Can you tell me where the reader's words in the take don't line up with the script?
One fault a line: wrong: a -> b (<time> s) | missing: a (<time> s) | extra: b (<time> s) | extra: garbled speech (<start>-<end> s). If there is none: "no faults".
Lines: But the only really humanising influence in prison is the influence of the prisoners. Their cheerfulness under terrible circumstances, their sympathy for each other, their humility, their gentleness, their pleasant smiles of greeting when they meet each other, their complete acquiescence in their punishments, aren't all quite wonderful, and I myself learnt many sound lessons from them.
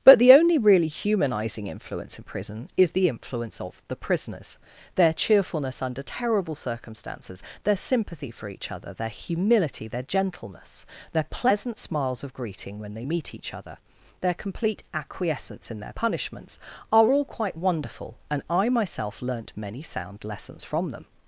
wrong: aren't -> are (16.9 s)